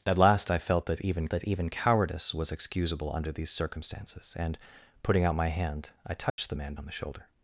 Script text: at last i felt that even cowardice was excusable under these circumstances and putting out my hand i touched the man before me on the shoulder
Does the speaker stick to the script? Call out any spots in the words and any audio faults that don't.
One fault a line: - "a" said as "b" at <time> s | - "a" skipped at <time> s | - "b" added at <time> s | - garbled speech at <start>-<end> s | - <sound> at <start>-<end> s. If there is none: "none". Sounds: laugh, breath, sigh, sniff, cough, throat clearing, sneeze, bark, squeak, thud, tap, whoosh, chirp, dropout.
- "that even" added at 1.3 s
- dropout at 6.3-6.4 s
- "before me" skipped at 6.7 s